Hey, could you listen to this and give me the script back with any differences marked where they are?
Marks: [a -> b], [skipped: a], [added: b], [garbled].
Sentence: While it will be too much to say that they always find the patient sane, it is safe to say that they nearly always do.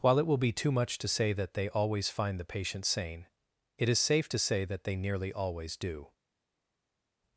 While it will be too much to say that they always find the patient sane, it is safe to say that they nearly always do.